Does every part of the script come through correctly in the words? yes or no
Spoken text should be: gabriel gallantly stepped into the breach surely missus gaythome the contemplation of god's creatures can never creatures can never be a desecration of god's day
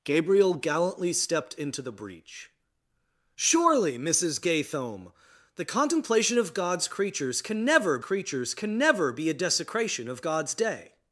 yes